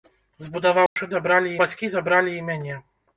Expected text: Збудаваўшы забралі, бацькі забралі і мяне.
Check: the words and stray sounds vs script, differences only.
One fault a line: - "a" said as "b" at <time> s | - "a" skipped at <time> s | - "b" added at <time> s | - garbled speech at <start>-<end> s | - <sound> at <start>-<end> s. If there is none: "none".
- dropout at 0.9-1.0 s